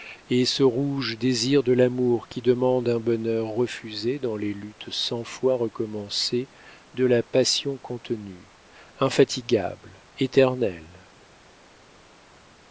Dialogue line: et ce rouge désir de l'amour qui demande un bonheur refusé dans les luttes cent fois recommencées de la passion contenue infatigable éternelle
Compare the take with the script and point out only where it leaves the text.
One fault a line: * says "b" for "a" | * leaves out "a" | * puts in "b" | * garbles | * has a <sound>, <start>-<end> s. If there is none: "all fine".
all fine